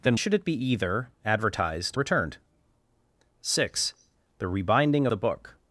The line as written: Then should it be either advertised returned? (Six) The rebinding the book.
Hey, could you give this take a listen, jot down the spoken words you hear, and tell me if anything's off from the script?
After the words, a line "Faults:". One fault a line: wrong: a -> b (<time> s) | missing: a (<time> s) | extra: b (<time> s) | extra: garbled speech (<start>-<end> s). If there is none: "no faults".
Then should it be either advertised returned? (Six) The rebinding the book.
Faults:
no faults